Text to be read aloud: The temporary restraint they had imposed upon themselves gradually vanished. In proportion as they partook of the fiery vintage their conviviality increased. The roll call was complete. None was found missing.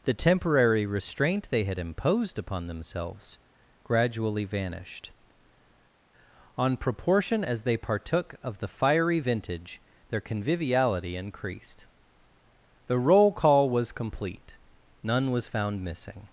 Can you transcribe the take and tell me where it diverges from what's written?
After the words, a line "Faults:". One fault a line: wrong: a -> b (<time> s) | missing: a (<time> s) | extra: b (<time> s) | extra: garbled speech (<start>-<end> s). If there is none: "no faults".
The temporary restraint they had imposed upon themselves gradually vanished. On proportion as they partook of the fiery vintage their conviviality increased. The roll call was complete. None was found missing.
Faults:
wrong: In -> On (6.6 s)